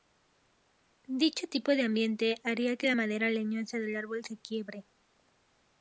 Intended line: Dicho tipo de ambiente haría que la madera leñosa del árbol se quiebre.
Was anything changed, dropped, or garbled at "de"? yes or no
no